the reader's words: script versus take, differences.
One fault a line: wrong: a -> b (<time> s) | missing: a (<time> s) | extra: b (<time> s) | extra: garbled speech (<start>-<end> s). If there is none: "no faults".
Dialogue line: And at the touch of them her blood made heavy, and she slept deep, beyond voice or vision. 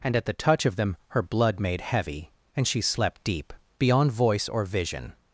no faults